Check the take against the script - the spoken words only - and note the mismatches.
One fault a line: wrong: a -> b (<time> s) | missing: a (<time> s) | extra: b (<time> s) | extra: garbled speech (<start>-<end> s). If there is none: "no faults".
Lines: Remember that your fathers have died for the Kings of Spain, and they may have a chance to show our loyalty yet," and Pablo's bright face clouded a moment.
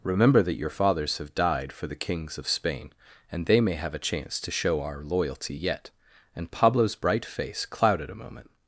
no faults